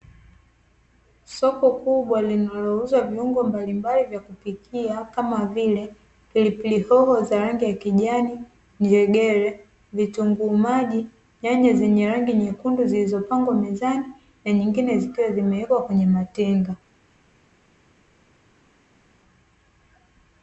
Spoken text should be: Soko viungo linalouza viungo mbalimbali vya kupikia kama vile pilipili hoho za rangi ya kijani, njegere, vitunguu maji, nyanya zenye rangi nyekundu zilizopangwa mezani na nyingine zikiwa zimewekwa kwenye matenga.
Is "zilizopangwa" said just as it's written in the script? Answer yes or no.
yes